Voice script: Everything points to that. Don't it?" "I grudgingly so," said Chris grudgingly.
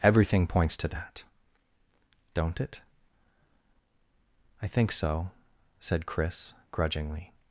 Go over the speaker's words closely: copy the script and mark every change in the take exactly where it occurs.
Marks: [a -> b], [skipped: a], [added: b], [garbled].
Everything points to that. Don't it?" "I [grudgingly -> think] so," said Chris grudgingly.